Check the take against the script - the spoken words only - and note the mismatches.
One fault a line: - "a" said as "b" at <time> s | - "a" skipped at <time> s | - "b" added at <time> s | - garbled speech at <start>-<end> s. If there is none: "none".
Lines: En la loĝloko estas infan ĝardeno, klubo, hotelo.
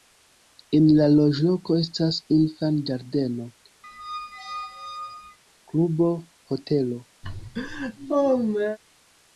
none